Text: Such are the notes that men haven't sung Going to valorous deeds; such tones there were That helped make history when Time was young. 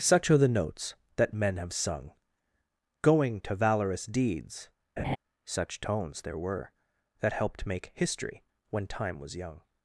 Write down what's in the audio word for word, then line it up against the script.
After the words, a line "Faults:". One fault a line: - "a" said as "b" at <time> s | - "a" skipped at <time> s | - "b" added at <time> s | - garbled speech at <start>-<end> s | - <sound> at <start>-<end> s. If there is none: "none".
Such are the notes that men have sung Going to valorous deeds; such tones there were That helped make history when Time was young.
Faults:
- "haven't" said as "have" at 1.6 s
- laugh at 5.0-5.2 s